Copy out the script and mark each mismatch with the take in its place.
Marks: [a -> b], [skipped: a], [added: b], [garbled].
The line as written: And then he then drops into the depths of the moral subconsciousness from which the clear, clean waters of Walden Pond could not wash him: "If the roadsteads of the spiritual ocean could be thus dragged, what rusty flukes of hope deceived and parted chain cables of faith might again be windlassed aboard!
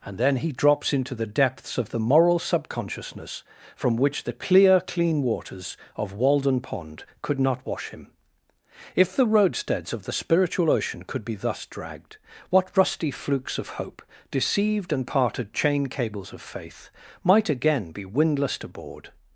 And then he [skipped: then] drops into the depths of the moral subconsciousness from which the clear, clean waters of Walden Pond could not wash him: "If the roadsteads of the spiritual ocean could be thus dragged, what rusty flukes of hope deceived and parted chain cables of faith might again be windlassed aboard!